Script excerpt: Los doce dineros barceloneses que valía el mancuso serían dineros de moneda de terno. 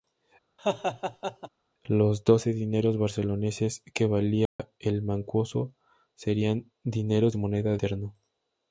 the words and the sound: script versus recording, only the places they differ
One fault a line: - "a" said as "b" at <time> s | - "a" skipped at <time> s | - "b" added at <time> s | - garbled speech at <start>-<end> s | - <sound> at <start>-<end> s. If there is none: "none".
- laugh at 0.6-1.5 s
- dropout at 4.5-4.6 s
- "de" skipped at 7.8 s